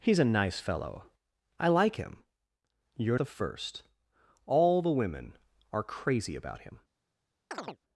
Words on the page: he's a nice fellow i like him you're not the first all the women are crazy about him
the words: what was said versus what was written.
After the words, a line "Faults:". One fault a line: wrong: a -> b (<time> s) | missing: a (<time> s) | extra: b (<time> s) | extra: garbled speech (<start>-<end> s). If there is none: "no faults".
he's a nice fellow i like him you're the first all the women are crazy about him
Faults:
missing: not (3.2 s)